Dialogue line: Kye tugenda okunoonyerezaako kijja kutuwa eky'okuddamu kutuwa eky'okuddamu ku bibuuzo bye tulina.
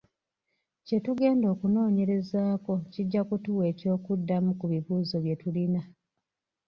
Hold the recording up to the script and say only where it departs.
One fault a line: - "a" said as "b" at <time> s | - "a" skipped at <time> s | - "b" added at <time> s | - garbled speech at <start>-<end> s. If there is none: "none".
- "kutuwa eky'okuddamu" skipped at 4.5 s